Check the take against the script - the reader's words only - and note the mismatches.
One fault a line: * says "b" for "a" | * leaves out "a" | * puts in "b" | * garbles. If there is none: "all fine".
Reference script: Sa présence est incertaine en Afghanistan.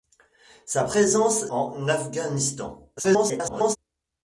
* leaves out "est incertaine"
* garbles